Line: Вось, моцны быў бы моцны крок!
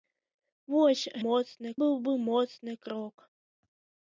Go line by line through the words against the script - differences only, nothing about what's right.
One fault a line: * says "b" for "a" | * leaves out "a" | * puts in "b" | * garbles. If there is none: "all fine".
all fine